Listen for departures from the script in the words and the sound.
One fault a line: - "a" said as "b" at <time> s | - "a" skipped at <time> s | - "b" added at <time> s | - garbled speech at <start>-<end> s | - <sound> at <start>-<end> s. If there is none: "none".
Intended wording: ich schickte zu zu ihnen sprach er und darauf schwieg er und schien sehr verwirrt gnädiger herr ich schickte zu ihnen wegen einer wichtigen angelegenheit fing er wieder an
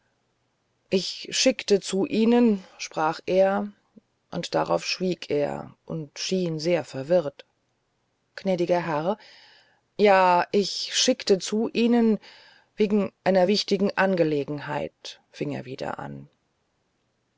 - "zu" skipped at 2.1 s
- "ja" added at 10.0 s